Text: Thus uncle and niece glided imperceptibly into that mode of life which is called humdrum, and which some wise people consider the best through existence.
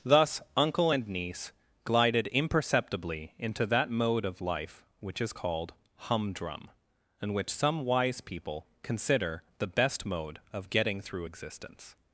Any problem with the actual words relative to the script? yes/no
yes